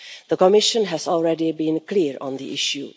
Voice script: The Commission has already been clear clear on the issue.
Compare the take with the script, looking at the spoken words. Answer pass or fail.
fail